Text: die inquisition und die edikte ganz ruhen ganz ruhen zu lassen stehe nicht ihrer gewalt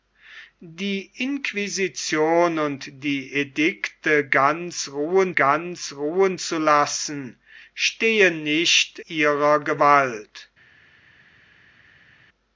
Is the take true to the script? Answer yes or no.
yes